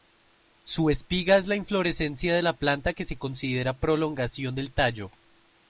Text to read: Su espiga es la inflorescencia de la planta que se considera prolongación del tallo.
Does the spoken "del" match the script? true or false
true